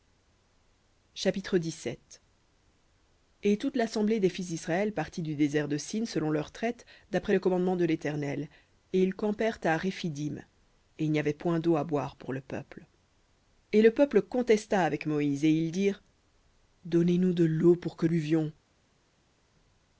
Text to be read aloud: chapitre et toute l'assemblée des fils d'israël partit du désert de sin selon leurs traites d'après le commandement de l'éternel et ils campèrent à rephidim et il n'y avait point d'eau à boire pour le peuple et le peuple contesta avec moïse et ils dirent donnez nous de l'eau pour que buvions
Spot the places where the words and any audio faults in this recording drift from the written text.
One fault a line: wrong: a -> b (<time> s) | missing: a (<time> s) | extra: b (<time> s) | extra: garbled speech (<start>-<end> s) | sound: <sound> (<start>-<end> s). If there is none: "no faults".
no faults